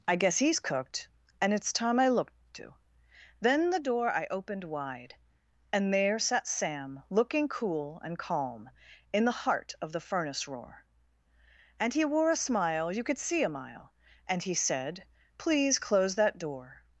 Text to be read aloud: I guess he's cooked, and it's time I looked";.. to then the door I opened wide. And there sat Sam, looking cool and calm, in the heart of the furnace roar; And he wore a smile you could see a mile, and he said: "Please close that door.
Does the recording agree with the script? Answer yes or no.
yes